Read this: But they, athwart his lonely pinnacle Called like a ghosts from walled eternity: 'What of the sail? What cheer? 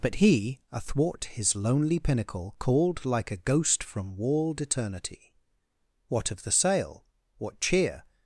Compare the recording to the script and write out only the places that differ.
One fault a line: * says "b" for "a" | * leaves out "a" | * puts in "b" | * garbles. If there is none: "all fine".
* says "he" for "they"
* says "ghost" for "ghosts"